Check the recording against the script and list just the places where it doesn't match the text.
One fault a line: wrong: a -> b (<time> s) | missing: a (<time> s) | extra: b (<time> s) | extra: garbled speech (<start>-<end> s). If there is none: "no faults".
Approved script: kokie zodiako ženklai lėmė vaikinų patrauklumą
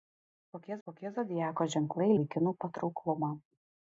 extra: kokie (0.9 s)
missing: lėmė (2.1 s)